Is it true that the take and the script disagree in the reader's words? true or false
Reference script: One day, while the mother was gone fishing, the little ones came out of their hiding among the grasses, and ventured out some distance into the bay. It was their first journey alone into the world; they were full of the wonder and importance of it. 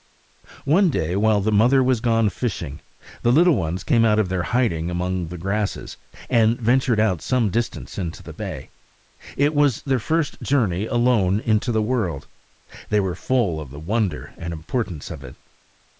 false